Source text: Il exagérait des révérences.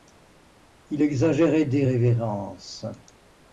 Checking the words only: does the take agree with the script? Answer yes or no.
yes